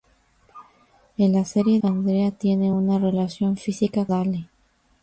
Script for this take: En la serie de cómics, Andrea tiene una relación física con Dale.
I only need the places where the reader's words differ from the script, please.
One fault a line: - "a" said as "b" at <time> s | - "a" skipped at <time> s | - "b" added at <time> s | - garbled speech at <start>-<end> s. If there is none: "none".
- "de cómics" skipped at 1.8 s
- "con" skipped at 4.1 s